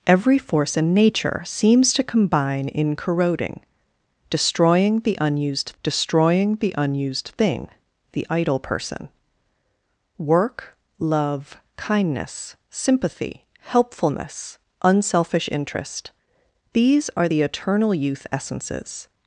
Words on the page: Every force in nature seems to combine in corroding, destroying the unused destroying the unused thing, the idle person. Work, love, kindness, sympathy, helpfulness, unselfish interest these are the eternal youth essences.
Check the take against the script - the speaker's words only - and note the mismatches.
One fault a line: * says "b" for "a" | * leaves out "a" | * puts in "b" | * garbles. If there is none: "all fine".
all fine